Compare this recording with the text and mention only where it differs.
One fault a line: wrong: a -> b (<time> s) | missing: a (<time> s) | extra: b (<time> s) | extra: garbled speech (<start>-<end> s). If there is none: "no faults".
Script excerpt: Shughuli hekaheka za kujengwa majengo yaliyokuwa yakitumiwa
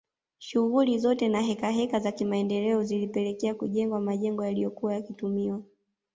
extra: zote na (1.0 s)
extra: kimaendeleo zilipelekea (2.1 s)